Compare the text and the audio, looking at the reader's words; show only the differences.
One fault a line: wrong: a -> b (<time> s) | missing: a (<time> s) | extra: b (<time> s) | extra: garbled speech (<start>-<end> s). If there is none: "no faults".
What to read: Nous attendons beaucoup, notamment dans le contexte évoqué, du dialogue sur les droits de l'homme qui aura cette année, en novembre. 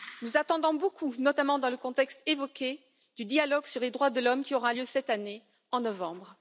extra: lieu (4.7 s)